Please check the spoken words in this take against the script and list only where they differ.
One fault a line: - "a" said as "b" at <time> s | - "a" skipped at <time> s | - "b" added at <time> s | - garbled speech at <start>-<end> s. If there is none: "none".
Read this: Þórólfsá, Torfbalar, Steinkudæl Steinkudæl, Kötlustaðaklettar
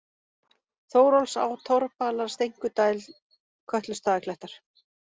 - "Steinkudæl" skipped at 3.0 s